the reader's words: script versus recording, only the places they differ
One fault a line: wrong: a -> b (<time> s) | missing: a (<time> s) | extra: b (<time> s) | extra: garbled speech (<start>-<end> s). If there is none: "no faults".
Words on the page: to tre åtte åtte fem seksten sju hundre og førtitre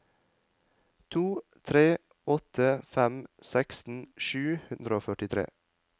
missing: åtte (2.7 s)